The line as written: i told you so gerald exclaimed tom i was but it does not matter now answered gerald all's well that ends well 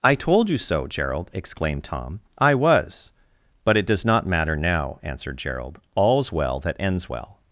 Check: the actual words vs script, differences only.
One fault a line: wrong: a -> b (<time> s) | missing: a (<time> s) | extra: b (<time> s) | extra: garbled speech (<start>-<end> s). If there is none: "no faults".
no faults